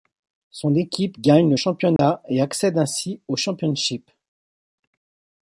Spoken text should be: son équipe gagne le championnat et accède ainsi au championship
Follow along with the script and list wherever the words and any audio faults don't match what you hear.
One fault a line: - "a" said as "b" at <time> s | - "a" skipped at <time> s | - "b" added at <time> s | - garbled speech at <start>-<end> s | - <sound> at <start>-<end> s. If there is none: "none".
- dropout at 2.0-2.0 s